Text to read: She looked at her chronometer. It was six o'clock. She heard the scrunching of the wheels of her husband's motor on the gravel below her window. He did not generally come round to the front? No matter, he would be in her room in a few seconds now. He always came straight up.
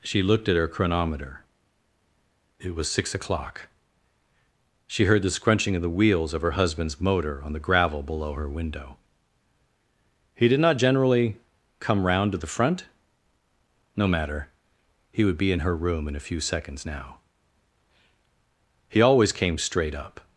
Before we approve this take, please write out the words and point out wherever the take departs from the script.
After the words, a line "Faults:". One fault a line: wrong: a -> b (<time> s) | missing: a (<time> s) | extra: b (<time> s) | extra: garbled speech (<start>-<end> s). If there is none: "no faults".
She looked at her chronometer. It was six o'clock. She heard the scrunching of the wheels of her husband's motor on the gravel below her window. He did not generally come round to the front? No matter, he would be in her room in a few seconds now. He always came straight up.
Faults:
no faults